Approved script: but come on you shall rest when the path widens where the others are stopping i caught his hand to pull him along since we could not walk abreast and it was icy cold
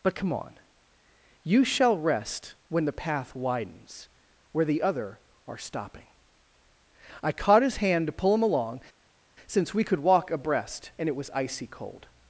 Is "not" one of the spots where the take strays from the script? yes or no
yes